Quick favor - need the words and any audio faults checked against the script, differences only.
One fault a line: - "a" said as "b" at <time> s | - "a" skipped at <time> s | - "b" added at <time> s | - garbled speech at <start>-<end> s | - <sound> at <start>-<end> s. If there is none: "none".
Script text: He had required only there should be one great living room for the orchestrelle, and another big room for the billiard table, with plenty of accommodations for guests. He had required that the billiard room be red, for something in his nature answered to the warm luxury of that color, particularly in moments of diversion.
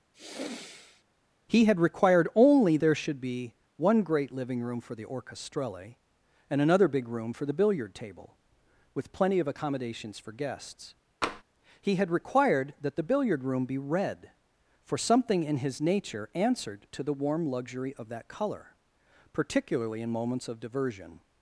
- sigh at 0.1-1.0 s
- tap at 11.2-11.4 s